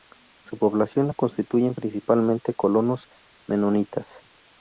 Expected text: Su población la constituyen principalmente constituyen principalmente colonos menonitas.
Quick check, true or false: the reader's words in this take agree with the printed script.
false